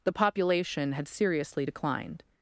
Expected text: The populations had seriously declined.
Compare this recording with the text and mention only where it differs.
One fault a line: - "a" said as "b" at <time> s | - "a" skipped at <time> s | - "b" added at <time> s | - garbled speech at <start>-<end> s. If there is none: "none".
- "populations" said as "population" at 0.1 s